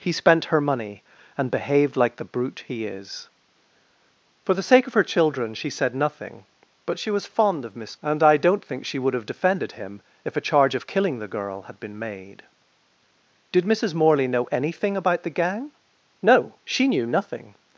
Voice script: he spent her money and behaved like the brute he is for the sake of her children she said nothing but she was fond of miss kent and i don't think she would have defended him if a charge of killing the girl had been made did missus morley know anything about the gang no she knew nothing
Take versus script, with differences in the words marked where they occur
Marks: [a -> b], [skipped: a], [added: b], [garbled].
he spent her money and behaved like the brute he is for the sake of her children she said nothing but she was fond of miss [skipped: kent] and i don't think she would have defended him if a charge of killing the girl had been made did missus morley know anything about the gang no she knew nothing